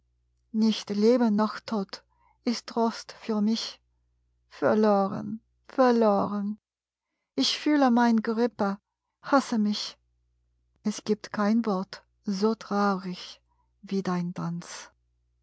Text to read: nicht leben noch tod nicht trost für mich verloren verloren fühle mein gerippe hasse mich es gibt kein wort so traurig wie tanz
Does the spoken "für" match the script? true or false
true